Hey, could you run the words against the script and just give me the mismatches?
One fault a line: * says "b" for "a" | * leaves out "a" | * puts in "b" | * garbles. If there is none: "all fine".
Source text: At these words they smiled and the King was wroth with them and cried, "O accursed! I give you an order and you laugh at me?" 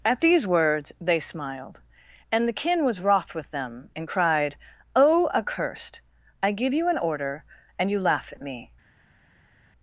* says "Kin" for "King"